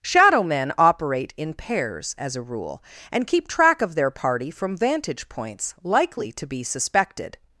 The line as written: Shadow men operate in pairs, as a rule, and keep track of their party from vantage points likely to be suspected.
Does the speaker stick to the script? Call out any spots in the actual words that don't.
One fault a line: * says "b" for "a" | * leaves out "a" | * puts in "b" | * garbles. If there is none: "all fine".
all fine